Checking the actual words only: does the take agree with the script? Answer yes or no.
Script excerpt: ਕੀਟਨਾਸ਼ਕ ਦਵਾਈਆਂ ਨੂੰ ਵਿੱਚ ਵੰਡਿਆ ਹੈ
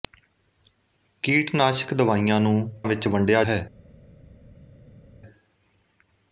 yes